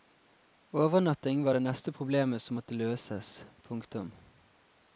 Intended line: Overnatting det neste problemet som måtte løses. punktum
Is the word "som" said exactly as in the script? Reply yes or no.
yes